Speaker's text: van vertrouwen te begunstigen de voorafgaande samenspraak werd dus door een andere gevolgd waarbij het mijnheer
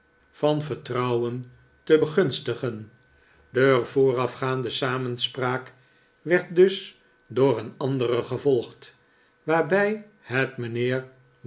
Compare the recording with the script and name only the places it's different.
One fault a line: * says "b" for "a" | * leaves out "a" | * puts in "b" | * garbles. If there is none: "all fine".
all fine